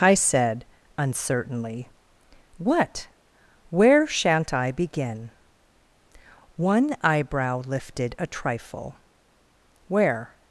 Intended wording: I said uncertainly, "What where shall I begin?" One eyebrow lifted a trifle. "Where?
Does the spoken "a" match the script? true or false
true